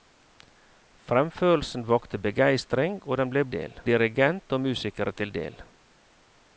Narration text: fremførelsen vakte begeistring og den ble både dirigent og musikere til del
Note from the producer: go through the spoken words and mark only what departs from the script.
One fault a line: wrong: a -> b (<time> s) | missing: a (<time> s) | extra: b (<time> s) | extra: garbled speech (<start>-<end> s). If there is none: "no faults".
wrong: både -> del (3.5 s)